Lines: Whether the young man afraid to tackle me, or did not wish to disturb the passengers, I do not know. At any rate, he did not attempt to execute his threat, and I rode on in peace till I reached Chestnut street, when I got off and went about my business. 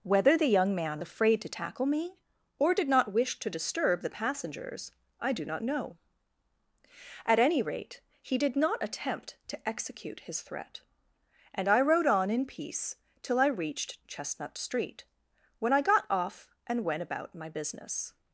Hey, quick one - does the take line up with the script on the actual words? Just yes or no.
yes